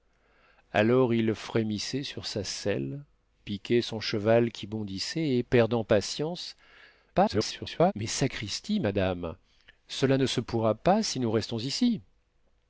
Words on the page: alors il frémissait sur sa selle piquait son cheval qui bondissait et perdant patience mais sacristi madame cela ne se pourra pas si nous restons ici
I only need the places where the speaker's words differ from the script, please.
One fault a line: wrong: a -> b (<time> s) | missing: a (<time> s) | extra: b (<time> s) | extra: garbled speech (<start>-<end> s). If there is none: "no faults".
extra: garbled speech (7.1-7.9 s)